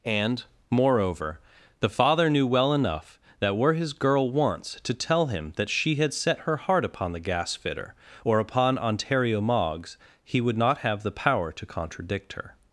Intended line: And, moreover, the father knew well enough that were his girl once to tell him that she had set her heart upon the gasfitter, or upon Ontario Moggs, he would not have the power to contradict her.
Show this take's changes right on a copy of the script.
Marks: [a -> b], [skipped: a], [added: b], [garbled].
And, moreover, the father knew well enough that were his girl once to tell him that she had set her heart upon the gasfitter, or upon Ontario Moggs, he would not have the power to contradict her.